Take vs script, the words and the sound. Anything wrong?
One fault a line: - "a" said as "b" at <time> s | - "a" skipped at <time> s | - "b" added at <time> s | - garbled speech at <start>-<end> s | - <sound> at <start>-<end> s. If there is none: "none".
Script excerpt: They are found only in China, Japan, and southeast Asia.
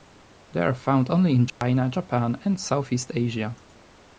- dropout at 1.5-1.6 s